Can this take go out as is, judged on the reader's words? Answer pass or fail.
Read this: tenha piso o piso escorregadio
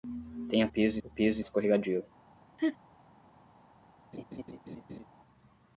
pass